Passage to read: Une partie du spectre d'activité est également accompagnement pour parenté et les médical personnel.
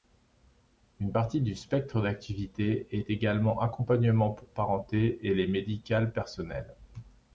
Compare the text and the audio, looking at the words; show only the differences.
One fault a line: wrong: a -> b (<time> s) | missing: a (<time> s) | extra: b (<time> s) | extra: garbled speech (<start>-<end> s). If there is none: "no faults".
no faults